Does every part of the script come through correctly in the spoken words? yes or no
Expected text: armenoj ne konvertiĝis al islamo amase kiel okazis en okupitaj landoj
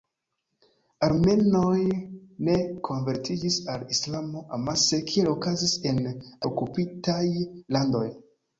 yes